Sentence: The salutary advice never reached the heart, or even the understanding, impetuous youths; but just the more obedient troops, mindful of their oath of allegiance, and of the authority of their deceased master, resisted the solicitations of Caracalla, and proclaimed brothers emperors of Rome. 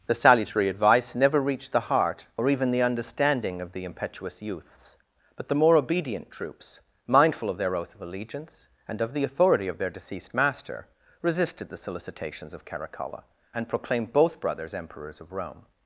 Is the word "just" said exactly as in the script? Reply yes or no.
no